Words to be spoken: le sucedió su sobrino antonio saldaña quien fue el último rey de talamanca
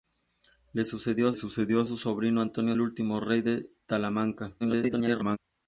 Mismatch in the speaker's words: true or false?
true